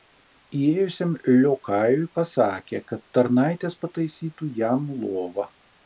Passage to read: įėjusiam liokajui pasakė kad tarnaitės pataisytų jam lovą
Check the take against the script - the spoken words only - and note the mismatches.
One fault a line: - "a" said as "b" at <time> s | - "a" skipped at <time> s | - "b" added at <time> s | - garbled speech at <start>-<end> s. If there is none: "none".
none